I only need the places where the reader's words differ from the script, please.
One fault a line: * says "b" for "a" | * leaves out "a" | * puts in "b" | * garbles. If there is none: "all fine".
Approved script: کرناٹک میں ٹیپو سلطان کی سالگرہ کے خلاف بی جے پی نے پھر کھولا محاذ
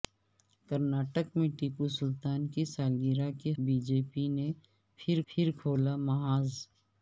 * leaves out "خلاف"
* puts in "پھر"